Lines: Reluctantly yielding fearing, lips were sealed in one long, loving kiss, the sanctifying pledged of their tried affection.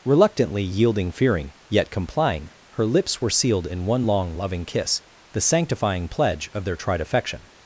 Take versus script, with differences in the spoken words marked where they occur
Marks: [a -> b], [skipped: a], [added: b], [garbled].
Reluctantly yielding fearing, [added: yet complying her] lips were sealed in one long, loving kiss, the sanctifying [pledged -> pledge] of their tried affection.